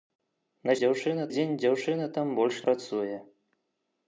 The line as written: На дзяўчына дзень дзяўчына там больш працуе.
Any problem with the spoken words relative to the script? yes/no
no